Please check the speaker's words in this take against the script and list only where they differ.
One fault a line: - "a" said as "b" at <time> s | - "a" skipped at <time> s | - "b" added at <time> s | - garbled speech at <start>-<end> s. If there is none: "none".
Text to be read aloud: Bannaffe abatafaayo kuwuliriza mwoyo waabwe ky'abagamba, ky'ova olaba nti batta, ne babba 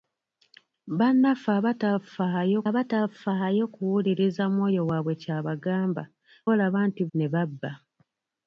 - "abatafaayo" added at 2.7 s
- "ky'ova" skipped at 6.0 s
- "batta" skipped at 7.0 s